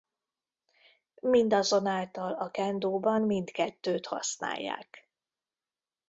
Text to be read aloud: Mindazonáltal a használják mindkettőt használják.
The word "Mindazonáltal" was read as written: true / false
true